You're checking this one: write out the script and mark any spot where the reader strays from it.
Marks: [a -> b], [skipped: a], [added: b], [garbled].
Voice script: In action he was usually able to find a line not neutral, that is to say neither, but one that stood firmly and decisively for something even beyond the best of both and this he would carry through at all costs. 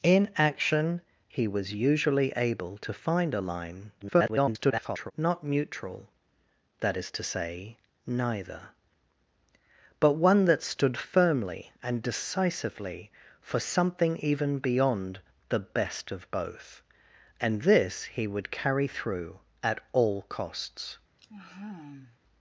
In action he was usually able to find a line [garbled] not neutral, that is to say neither, but one that stood firmly and decisively for something even beyond the best of both and this he would carry through at all costs.